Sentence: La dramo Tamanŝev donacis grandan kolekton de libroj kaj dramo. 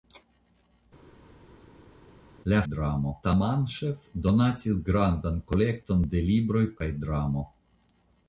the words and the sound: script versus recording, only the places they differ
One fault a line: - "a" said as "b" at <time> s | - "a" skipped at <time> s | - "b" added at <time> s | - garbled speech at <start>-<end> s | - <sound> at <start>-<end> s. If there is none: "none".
none